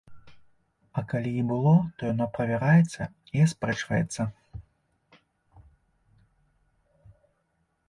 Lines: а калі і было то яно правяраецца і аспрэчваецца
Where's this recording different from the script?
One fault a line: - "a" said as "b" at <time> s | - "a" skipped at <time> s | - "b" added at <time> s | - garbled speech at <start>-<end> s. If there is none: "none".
none